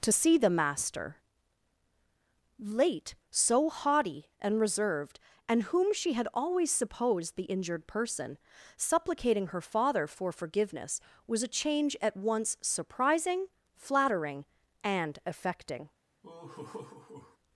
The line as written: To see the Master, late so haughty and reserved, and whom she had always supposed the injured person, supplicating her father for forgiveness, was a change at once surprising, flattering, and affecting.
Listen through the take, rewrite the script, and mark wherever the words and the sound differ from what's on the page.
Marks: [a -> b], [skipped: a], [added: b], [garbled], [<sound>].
To see the Master, late so haughty and reserved, and whom she had always supposed the injured person, supplicating her father for forgiveness, was a change at once surprising, flattering, and affecting. [laugh]